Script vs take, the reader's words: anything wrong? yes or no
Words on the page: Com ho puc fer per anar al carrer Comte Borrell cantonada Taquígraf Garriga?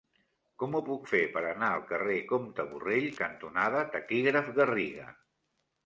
no